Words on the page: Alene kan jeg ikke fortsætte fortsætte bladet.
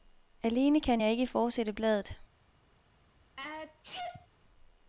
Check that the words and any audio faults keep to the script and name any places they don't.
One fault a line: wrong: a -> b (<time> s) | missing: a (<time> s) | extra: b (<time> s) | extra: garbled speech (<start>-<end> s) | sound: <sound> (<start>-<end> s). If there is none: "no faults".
missing: fortsætte (1.7 s)
sound: sneeze (3.4-4.3 s)